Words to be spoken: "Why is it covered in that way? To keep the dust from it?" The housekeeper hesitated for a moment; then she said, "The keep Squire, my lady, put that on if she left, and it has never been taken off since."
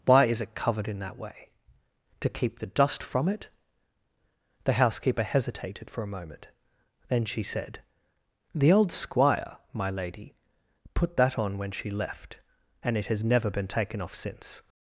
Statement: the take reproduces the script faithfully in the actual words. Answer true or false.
false